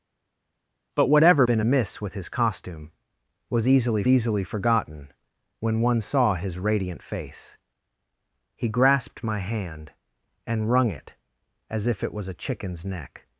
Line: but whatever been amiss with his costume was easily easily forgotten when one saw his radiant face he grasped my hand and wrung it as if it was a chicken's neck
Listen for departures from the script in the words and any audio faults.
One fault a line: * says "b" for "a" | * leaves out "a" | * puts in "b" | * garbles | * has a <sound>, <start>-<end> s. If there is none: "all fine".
all fine